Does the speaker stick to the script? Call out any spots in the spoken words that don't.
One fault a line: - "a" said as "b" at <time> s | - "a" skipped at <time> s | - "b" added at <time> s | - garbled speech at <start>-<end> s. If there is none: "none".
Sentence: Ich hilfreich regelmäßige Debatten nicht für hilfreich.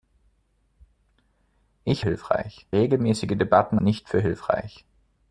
none